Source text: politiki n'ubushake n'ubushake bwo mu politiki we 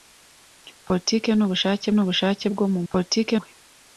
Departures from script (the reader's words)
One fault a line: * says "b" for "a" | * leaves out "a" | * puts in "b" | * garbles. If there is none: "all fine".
all fine